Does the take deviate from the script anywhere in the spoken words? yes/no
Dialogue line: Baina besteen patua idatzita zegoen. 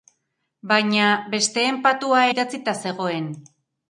no